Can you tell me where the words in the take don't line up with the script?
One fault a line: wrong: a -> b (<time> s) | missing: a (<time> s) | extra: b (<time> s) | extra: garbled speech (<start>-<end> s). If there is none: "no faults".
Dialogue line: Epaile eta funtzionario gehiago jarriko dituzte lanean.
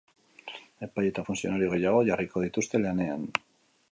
no faults